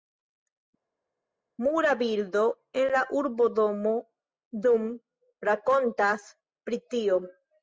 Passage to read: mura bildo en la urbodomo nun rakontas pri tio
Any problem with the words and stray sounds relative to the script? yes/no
no